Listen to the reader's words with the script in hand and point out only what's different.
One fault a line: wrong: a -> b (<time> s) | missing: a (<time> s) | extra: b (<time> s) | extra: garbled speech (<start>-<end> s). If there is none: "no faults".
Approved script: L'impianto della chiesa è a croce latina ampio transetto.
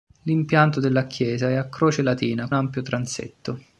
no faults